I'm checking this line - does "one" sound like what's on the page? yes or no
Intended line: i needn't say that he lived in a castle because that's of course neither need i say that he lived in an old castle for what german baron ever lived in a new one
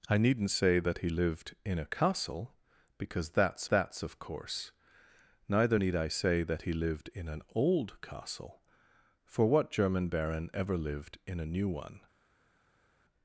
yes